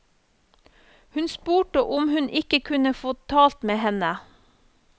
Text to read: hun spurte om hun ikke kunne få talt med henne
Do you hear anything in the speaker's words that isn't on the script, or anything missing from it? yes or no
no